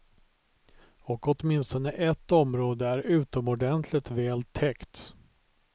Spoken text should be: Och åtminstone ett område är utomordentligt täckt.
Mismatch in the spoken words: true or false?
true